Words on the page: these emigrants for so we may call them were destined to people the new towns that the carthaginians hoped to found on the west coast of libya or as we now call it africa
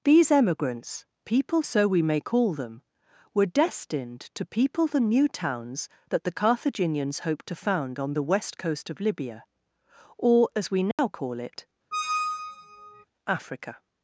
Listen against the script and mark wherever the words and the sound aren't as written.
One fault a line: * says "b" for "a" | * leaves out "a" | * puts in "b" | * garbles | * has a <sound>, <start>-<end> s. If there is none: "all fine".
* says "people" for "for"
* has a dropout, 10.9-11.0 s
* has a squeak, 11.9-13.0 s